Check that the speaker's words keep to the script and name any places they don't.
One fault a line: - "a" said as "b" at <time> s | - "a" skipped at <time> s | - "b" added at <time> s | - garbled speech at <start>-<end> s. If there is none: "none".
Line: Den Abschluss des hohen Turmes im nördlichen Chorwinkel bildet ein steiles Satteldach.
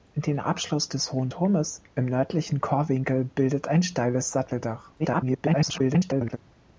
- garbled speech at 5.0-6.4 s